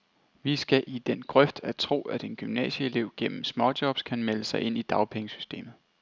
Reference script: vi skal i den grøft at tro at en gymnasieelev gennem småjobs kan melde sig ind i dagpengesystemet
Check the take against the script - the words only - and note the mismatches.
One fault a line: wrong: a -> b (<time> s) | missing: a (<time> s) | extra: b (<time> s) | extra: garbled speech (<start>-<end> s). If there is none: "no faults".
no faults